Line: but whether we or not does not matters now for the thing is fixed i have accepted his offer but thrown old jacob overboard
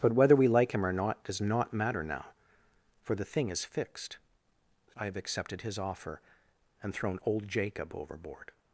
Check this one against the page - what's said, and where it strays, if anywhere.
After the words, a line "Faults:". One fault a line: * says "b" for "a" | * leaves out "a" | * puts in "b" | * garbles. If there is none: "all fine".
but whether we like him or not does not matter now for the thing is fixed i have accepted his offer and thrown old jacob overboard
Faults:
* puts in "like him"
* says "matter" for "matters"
* says "and" for "but"